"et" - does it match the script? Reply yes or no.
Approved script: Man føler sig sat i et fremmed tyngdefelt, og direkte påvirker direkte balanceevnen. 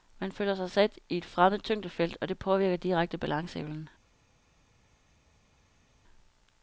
yes